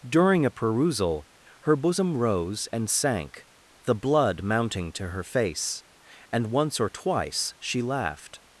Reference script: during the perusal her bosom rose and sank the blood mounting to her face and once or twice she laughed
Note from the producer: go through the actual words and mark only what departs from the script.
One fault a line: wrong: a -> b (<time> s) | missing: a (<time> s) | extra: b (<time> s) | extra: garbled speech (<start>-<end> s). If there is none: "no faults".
wrong: the -> a (0.5 s)